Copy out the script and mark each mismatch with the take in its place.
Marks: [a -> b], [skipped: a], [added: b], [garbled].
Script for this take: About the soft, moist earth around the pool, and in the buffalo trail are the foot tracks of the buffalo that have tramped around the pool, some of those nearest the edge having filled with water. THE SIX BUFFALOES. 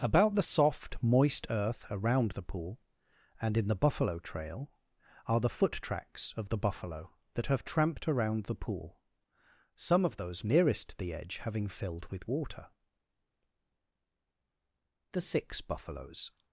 About the soft, moist earth around the pool, and in the buffalo trail are the foot tracks of the buffalo that have tramped around the pool, some of those nearest the edge having filled with water. THE SIX BUFFALOES.